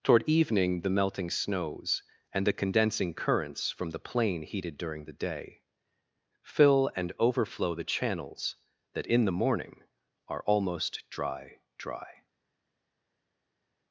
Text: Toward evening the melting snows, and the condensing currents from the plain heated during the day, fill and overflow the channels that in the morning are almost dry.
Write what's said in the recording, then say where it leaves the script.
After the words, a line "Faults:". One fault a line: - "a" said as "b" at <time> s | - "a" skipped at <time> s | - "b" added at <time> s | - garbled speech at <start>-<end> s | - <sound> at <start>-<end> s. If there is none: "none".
Toward evening the melting snows, and the condensing currents from the plain heated during the day, fill and overflow the channels that in the morning are almost dry dry.
Faults:
- "dry" added at 11.8 s